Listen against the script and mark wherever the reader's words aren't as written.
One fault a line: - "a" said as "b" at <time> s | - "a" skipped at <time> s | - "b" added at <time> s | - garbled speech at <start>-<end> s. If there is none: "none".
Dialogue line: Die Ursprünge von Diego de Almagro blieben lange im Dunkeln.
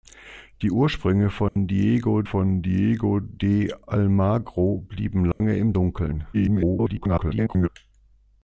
- "von Diego" added at 2.2 s
- garbled speech at 6.3-7.7 s